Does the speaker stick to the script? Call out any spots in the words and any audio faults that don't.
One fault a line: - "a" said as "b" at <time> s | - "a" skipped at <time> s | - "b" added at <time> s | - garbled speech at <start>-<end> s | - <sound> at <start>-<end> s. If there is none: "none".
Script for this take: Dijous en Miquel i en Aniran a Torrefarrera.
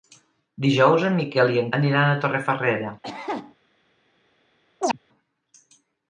- cough at 3.0-3.5 s
- chirp at 4.8-5.0 s